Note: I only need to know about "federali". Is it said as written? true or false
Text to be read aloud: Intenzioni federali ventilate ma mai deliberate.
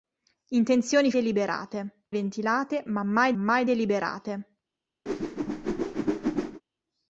false